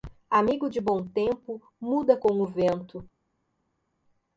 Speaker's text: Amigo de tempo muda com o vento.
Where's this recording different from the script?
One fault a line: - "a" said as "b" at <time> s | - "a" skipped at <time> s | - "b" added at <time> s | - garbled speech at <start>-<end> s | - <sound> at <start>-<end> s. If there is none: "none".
- "bom" added at 0.8 s